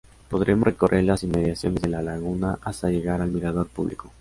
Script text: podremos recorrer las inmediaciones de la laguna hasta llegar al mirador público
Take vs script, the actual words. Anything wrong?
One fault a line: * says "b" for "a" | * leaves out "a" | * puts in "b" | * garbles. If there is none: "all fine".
all fine